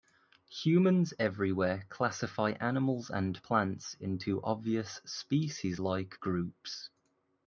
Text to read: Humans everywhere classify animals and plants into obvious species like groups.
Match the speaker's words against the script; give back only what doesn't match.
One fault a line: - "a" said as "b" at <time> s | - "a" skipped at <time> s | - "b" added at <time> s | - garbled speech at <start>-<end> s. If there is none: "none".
none